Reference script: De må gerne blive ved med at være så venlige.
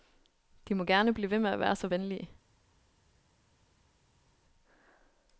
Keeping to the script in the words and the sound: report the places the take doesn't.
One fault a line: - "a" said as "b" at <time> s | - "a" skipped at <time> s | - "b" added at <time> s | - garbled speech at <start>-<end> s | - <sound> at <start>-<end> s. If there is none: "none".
none